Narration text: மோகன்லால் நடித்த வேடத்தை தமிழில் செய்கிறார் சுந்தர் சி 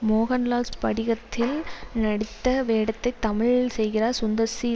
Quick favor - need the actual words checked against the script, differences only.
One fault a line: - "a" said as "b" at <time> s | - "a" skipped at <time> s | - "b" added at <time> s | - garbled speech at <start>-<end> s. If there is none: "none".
- "ஸ்படிகத்தில்" added at 0.7 s